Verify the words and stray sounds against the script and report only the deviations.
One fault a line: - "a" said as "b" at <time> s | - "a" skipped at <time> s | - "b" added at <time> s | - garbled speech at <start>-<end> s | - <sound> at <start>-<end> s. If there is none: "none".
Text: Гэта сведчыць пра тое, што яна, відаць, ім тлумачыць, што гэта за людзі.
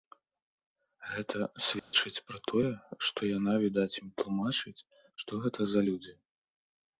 - dropout at 1.8-1.9 s